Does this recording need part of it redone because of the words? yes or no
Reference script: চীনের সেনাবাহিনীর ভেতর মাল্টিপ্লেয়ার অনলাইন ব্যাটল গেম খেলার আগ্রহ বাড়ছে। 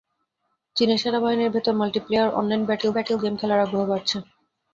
yes